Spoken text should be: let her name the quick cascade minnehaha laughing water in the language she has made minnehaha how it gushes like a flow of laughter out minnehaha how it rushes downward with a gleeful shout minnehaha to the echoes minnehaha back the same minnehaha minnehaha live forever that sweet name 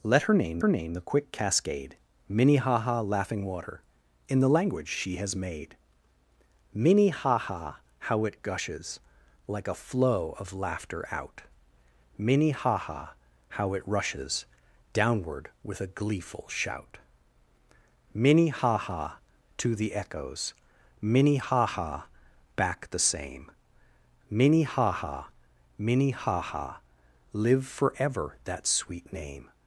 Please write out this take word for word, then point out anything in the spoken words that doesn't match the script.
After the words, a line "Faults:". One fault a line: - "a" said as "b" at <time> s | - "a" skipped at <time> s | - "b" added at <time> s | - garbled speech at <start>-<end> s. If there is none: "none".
let her name her name the quick cascade minnehaha laughing water in the language she has made minnehaha how it gushes like a flow of laughter out minnehaha how it rushes downward with a gleeful shout minnehaha to the echoes minnehaha back the same minnehaha minnehaha live forever that sweet name
Faults:
- "her name" added at 0.6 s